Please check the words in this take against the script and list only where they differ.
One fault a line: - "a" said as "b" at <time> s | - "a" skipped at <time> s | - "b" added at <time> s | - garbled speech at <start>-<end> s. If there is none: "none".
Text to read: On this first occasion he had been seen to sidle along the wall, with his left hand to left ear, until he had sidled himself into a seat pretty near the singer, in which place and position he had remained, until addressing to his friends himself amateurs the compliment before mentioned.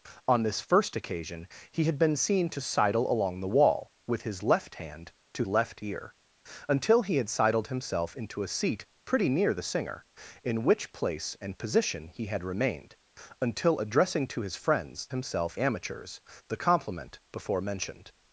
none